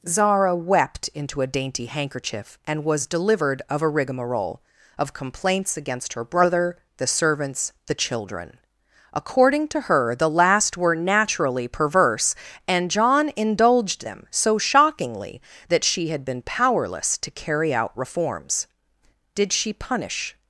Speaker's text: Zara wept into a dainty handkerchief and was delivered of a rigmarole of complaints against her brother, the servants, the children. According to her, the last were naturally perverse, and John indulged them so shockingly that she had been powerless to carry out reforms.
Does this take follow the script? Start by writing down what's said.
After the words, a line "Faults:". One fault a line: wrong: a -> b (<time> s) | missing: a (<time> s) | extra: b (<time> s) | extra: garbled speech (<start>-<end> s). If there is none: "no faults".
Zara wept into a dainty handkerchief and was delivered of a rigmarole of complaints against her brother, the servants, the children. According to her, the last were naturally perverse, and John indulged them so shockingly that she had been powerless to carry out reforms. Did she punish
Faults:
extra: Did she punish (19.3 s)